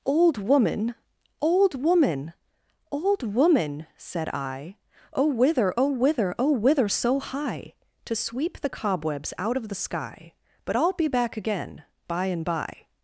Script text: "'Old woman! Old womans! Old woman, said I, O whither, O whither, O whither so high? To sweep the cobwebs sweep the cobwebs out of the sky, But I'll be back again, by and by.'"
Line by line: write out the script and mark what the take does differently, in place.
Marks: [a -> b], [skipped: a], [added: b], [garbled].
"'Old woman! Old [womans! -> woman] Old woman, said I, O whither, O whither, O whither so high? To sweep the cobwebs [skipped: sweep the cobwebs] out of the sky, But I'll be back again, by and by.'"